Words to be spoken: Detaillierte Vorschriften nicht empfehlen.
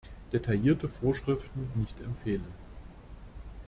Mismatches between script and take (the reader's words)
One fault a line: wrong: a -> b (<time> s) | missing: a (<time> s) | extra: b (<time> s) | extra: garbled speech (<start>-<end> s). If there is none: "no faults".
no faults